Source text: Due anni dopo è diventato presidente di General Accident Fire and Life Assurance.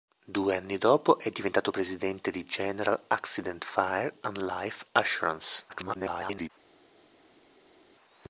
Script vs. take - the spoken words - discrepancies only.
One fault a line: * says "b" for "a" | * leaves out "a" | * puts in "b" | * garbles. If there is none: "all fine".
* garbles